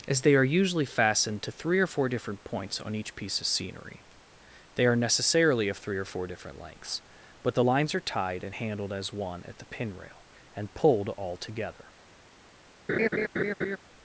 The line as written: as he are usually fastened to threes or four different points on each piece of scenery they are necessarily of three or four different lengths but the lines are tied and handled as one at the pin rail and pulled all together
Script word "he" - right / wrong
wrong